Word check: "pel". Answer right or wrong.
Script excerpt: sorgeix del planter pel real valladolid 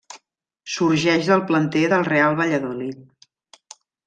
wrong